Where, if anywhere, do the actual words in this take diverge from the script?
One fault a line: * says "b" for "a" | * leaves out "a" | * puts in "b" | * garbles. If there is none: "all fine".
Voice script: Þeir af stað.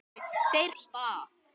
all fine